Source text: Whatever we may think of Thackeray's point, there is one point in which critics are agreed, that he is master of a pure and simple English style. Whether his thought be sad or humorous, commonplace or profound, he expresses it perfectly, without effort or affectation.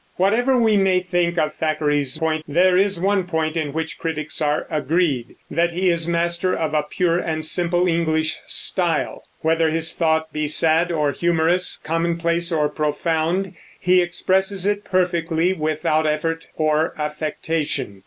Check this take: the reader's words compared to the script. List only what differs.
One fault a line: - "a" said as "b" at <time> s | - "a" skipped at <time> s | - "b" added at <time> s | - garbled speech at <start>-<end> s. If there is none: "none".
none